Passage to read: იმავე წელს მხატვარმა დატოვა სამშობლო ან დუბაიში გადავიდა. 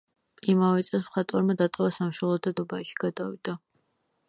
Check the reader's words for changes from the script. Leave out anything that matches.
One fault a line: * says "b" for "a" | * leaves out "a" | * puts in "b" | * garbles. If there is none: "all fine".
* says "და" for "ან"